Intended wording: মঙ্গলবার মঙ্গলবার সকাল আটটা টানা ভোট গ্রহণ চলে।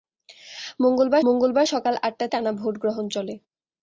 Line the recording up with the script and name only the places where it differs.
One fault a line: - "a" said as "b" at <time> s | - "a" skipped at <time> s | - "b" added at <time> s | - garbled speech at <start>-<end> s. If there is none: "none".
none